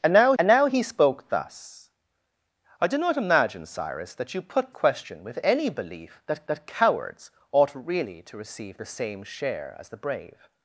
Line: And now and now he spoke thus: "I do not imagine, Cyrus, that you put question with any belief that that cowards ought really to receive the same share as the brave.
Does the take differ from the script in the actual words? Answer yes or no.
no